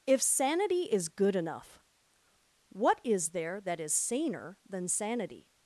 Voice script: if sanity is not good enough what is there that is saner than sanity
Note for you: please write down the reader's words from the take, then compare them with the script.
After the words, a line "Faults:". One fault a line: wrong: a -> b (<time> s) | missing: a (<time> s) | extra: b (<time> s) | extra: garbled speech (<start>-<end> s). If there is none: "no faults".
if sanity is good enough what is there that is saner than sanity
Faults:
missing: not (1.1 s)